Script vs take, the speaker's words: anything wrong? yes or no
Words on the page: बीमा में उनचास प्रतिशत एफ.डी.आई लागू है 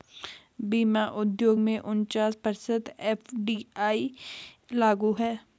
yes